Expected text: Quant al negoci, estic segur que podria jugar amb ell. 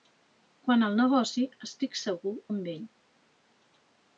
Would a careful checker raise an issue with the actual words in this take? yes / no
yes